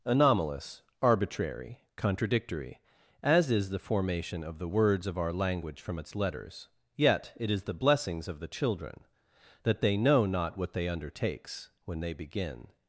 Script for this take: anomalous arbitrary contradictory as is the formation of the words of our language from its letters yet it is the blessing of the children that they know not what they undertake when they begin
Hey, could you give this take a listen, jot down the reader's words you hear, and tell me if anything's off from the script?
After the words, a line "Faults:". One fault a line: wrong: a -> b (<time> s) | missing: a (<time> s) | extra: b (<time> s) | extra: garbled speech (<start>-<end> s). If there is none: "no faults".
anomalous arbitrary contradictory as is the formation of the words of our language from its letters yet it is the blessings of the children that they know not what they undertakes when they begin
Faults:
wrong: blessing -> blessings (7.7 s)
wrong: undertake -> undertakes (10.9 s)